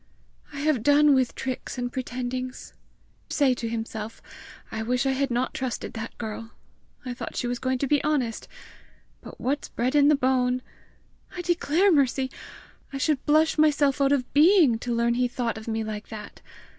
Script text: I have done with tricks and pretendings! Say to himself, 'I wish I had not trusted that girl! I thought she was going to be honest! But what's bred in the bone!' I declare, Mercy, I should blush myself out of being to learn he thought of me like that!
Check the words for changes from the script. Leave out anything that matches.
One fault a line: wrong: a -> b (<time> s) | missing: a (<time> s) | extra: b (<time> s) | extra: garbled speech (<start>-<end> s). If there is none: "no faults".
no faults